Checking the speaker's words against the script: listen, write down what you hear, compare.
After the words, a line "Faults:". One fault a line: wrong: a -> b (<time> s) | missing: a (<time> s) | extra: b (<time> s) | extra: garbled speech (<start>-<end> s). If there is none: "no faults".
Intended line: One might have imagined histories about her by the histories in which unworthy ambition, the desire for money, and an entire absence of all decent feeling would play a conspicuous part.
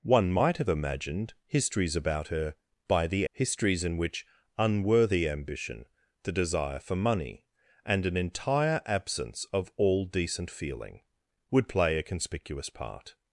One might have imagined histories about her by the histories in which unworthy ambition, the desire for money, and an entire absence of all decent feeling would play a conspicuous part.
Faults:
no faults